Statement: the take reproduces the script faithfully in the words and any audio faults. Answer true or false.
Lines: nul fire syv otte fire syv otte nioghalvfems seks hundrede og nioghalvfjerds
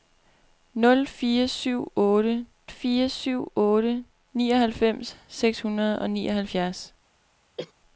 false